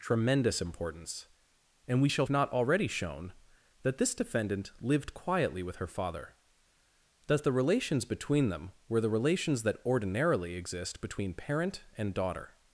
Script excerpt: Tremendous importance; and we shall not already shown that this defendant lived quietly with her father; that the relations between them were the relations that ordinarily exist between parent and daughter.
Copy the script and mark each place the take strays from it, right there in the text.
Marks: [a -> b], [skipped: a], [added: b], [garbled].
Tremendous importance; and we shall not already shown that this defendant lived quietly with her father; that the relations between them were the relations that ordinarily exist between parent and daughter.